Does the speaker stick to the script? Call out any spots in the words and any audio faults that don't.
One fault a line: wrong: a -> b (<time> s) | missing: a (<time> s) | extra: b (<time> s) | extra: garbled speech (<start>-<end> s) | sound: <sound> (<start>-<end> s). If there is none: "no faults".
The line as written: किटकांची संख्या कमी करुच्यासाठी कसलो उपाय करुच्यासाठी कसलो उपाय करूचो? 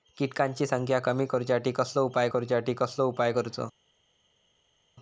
no faults